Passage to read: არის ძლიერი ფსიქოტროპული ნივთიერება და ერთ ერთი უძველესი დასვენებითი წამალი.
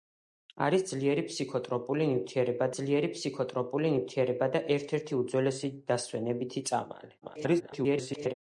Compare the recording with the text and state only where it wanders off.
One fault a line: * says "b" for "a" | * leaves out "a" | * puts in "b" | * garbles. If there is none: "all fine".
* puts in "ძლიერი ფსიქოტროპული ნივთიერება"
* garbles